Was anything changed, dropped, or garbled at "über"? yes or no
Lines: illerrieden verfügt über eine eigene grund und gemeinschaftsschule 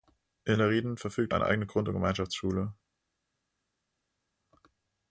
yes